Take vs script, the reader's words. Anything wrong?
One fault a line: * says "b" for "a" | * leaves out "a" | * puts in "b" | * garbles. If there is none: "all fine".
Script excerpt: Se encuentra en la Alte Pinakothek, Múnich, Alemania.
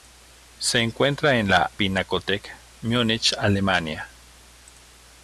* leaves out "Alte"